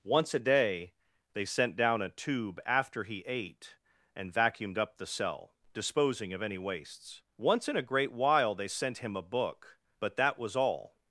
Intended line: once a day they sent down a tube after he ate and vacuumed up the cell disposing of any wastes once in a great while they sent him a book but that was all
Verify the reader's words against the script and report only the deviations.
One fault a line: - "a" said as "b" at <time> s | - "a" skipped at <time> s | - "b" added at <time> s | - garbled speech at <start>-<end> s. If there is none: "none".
none